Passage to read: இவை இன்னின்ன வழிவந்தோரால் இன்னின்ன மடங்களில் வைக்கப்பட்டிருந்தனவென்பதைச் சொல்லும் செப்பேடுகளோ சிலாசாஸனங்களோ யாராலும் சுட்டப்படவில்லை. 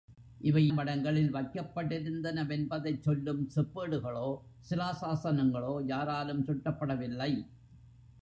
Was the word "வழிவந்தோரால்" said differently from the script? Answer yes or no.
yes